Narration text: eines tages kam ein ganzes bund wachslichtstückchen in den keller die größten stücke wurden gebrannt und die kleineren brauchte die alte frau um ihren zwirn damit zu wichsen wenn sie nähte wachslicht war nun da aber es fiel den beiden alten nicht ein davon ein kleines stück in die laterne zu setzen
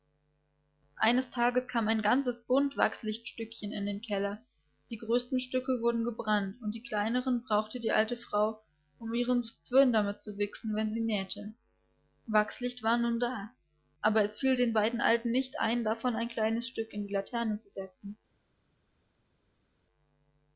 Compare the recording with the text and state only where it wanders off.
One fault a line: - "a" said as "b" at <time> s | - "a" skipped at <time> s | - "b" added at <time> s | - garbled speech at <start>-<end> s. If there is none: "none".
none